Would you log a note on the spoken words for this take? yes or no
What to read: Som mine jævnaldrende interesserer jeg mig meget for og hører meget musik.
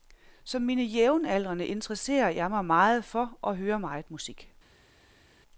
no